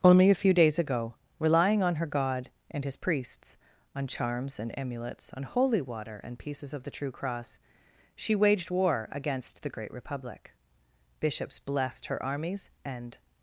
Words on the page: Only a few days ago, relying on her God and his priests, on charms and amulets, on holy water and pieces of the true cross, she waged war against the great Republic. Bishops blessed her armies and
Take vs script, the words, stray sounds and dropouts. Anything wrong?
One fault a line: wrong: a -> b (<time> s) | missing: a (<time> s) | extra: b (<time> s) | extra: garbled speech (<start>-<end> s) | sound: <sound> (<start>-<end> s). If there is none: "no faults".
no faults